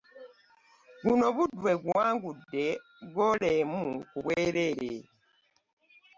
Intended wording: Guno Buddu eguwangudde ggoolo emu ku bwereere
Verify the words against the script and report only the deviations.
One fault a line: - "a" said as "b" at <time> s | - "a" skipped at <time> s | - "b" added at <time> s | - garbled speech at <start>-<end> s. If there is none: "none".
none